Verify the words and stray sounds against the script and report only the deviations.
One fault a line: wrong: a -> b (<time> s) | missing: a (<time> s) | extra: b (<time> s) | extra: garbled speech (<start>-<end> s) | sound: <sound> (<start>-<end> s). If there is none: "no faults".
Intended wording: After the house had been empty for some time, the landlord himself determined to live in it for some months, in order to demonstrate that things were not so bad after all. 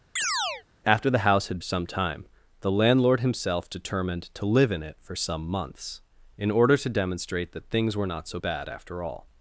sound: chirp (0.2-0.6 s)
missing: been empty for (1.6 s)